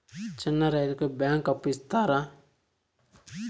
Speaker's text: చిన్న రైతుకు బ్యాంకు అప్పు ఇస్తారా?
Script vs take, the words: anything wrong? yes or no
no